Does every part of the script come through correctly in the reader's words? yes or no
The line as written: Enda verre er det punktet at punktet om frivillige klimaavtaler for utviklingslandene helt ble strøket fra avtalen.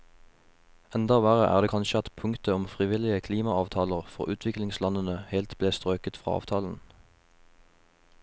no